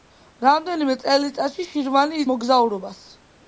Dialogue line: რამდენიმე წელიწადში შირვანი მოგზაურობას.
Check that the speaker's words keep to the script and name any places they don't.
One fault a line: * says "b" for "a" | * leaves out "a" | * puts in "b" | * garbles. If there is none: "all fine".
all fine